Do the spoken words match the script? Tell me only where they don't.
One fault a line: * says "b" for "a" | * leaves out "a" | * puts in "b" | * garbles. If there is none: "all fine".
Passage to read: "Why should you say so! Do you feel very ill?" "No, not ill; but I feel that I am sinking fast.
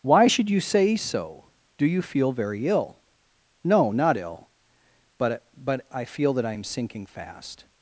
* puts in "but"